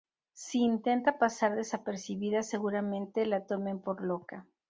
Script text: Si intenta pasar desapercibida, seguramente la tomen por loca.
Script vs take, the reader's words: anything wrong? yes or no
no